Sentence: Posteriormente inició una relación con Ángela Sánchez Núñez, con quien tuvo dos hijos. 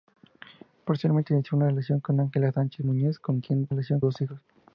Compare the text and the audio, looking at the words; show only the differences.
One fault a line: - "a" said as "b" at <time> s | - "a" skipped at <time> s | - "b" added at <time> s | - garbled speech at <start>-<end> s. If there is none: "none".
- "tuvo" said as "relación" at 3.7 s